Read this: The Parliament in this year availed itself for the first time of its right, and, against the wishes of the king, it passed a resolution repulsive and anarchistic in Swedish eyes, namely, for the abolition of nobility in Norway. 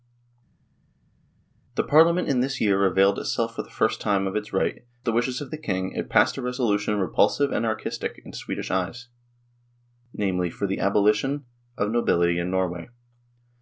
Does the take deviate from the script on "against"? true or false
true